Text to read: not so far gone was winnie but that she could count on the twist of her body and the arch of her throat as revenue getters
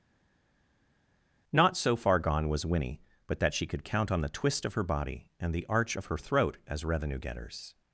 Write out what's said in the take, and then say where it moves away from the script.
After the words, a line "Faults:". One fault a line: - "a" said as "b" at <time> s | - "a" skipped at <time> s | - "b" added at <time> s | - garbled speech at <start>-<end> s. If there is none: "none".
not so far gone was winnie but that she could count on the twist of her body and the arch of her throat as revenue getters
Faults:
none